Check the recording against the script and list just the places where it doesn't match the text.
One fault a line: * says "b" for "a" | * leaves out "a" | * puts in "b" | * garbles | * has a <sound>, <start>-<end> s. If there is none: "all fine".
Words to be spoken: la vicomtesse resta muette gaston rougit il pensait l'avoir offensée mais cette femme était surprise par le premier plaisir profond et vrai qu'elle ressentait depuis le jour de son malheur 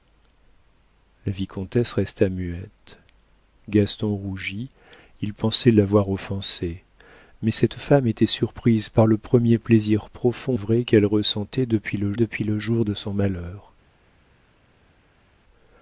* leaves out "et"
* puts in "depuis le"